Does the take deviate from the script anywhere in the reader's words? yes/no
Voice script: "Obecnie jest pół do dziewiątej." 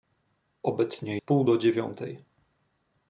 yes